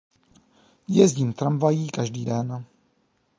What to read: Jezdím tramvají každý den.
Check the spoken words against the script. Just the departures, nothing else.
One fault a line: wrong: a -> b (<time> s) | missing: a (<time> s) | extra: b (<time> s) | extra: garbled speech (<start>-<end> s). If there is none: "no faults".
no faults